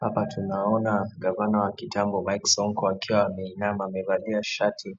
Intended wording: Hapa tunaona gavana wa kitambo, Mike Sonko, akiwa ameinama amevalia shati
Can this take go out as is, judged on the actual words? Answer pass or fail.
pass